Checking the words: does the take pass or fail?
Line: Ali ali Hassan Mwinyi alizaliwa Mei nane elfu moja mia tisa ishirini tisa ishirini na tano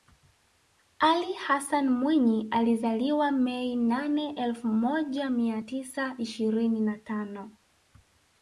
fail